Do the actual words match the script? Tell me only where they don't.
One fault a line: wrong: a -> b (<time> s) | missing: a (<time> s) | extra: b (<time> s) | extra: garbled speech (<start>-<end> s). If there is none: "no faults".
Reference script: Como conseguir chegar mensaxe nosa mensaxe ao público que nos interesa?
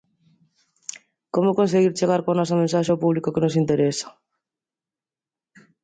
wrong: mensaxe -> coa (2.2 s)